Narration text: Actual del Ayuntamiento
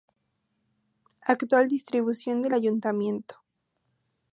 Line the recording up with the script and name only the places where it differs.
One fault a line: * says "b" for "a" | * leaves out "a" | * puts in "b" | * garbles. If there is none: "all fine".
* puts in "distribución"